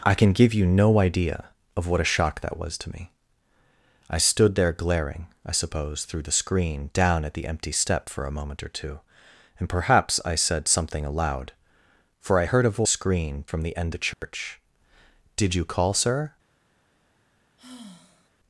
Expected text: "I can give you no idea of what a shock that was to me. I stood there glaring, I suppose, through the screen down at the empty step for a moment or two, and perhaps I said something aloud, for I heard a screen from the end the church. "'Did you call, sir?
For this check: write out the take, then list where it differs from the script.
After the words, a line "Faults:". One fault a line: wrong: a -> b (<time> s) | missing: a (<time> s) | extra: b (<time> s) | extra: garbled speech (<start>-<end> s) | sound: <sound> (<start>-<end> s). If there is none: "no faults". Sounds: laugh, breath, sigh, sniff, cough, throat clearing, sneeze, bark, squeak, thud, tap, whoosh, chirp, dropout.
"I can give you no idea of what a shock that was to me. I stood there glaring, I suppose, through the screen down at the empty step for a moment or two, and perhaps I said something aloud, for I heard a screen from the end the church. "'Did you call, sir?
Faults:
sound: dropout (14.1-14.2 s)
sound: sigh (17.6-18.3 s)